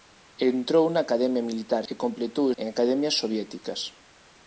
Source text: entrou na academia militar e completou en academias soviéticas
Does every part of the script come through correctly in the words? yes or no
yes